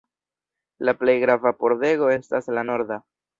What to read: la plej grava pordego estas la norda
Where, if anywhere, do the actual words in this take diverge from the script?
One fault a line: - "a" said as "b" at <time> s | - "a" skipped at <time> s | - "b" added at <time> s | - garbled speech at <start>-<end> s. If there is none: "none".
none